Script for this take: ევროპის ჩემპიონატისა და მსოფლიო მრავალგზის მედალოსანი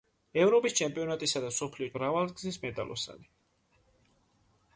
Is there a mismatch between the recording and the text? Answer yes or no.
no